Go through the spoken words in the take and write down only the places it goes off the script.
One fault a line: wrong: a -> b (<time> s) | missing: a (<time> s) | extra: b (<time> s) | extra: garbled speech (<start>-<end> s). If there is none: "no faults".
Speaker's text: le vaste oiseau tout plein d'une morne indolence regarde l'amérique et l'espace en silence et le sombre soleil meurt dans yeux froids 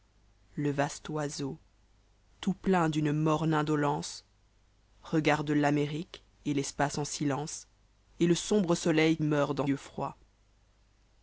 no faults